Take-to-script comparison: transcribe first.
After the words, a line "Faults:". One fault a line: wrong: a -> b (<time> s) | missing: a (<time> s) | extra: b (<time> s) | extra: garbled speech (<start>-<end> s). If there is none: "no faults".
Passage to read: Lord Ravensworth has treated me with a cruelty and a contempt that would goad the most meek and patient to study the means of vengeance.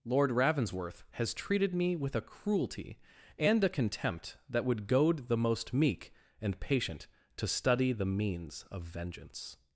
Lord Ravensworth has treated me with a cruelty and a contempt that would goad the most meek and patient to study the means of vengeance.
Faults:
no faults